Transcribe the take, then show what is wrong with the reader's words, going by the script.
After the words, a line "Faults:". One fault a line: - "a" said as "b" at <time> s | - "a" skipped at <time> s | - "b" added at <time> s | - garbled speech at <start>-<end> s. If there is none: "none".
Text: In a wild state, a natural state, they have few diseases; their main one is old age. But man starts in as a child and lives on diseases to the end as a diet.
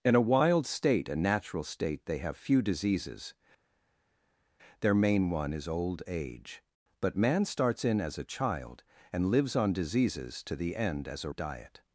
In a wild state, a natural state, they have few diseases; their main one is old age. But man starts in as a child and lives on diseases to the end as a diet.
Faults:
none